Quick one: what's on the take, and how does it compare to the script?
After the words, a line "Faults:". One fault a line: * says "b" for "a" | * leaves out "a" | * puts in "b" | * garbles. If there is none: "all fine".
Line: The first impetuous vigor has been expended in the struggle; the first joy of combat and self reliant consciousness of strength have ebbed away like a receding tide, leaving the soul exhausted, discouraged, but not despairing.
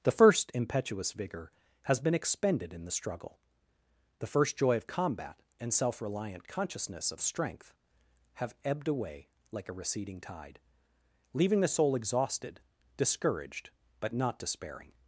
The first impetuous vigor has been expended in the struggle; the first joy of combat and self reliant consciousness of strength have ebbed away like a receding tide, leaving the soul exhausted, discouraged, but not despairing.
Faults:
all fine